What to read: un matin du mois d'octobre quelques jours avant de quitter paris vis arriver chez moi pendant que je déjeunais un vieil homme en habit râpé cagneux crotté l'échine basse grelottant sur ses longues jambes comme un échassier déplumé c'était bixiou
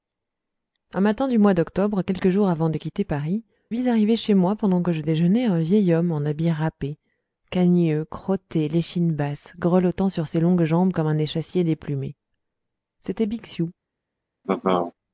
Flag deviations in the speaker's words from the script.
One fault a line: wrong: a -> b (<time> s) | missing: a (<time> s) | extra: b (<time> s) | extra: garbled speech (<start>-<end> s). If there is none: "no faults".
no faults